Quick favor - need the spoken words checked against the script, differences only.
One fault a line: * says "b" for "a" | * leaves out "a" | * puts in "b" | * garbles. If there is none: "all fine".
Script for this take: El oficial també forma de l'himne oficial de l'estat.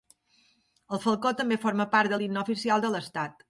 * says "falcó" for "oficial"
* puts in "part"